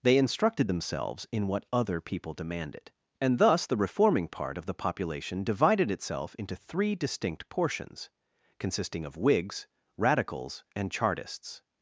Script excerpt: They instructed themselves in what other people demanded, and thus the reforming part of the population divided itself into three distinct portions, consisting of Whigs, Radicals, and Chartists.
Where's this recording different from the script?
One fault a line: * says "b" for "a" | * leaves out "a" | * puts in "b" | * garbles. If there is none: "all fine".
all fine